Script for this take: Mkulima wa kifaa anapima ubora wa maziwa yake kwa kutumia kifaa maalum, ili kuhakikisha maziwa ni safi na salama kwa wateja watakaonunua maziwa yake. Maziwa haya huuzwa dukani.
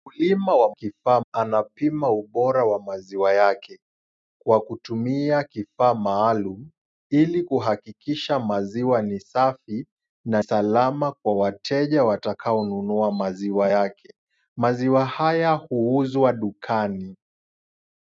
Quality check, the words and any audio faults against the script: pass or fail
pass